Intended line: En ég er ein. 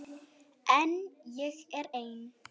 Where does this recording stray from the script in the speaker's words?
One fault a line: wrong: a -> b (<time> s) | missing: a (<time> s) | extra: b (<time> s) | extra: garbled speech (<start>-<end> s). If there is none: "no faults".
no faults